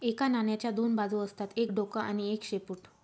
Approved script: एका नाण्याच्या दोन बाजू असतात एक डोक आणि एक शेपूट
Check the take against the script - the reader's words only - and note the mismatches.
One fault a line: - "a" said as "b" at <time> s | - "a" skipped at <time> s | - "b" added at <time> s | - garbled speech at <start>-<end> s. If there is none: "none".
none